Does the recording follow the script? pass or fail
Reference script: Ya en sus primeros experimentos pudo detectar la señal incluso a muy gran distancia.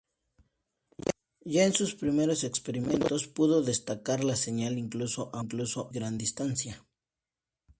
fail